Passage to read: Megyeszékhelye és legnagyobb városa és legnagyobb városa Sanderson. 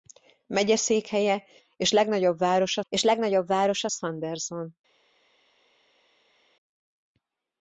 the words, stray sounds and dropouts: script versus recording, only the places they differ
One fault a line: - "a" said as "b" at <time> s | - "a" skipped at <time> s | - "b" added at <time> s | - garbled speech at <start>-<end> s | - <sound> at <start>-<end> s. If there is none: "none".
none